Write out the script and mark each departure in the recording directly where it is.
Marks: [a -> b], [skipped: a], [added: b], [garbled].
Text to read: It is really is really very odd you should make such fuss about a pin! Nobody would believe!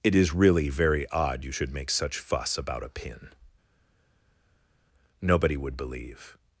It is really [skipped: is really] very odd you should make such fuss about a pin! Nobody would believe!